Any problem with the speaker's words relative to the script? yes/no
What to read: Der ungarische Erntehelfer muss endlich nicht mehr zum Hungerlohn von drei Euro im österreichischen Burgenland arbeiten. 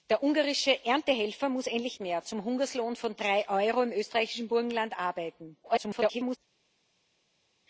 yes